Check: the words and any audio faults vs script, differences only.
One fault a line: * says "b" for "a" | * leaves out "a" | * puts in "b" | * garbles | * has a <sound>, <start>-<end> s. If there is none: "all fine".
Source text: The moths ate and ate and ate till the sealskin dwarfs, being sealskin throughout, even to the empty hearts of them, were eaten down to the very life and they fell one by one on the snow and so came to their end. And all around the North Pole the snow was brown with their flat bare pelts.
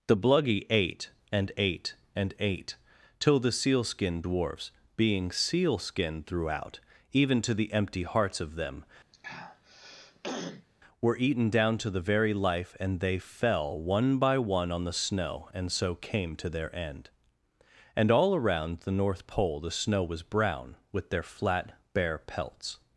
* says "bluggy" for "moths"
* has a throat clearing, 9.1-10.7 s